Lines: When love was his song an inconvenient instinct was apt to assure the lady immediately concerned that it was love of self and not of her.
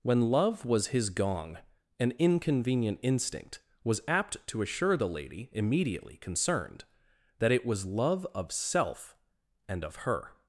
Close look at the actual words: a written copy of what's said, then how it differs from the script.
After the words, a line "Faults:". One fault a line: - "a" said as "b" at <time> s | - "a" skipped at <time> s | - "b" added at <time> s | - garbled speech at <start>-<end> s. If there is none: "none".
When love was his gong an inconvenient instinct was apt to assure the lady immediately concerned that it was love of self and of her.
Faults:
- "song" said as "gong" at 1.1 s
- "not" skipped at 9.8 s